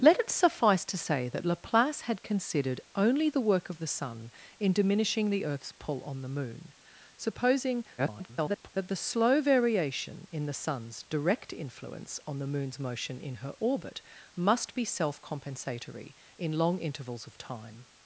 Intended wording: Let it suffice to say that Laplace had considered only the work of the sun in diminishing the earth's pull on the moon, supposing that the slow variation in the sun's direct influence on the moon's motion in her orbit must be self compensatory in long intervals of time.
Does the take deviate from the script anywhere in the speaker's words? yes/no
yes